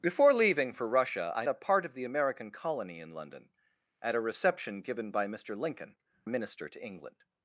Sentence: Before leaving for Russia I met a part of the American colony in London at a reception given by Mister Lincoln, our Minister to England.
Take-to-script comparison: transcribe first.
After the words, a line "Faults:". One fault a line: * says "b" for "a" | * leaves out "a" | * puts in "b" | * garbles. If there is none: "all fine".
Before leaving for Russia I a part of the American colony in London at a reception given by Mister Lincoln, Minister to England.
Faults:
* leaves out "met"
* leaves out "our"